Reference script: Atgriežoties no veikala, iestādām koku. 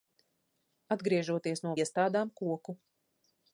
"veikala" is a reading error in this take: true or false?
true